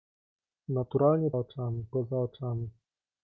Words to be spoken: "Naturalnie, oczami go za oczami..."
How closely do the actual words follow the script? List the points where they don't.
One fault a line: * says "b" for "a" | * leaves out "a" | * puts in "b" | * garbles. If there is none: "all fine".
all fine